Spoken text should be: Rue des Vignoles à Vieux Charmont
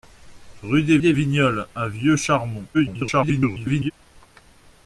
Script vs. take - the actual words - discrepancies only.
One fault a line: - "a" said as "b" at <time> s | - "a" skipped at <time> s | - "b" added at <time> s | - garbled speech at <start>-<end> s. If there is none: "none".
- "des" added at 1.0 s
- garbled speech at 2.7-3.9 s